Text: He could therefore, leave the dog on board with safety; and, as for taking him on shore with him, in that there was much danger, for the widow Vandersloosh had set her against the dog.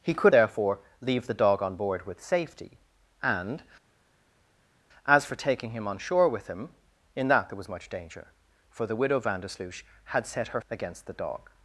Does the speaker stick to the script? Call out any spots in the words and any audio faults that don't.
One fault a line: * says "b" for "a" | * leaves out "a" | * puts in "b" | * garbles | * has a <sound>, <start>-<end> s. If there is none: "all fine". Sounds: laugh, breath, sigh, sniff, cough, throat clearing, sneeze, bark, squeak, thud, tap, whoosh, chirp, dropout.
all fine